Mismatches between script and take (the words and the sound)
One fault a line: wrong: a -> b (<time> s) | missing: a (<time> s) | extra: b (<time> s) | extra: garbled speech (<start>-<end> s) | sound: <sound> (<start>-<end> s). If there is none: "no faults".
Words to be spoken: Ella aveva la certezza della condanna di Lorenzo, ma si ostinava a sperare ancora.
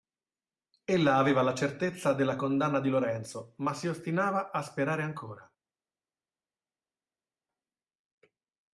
no faults